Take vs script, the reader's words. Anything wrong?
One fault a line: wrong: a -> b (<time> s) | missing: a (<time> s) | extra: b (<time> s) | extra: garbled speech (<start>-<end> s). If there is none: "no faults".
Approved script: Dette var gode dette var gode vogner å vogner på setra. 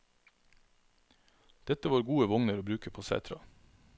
missing: dette var gode (2.3 s)
wrong: vogner -> bruke (2.6 s)